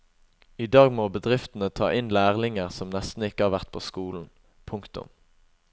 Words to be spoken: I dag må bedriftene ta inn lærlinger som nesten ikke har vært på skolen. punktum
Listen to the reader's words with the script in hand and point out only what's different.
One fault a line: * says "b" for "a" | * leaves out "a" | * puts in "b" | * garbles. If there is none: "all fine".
all fine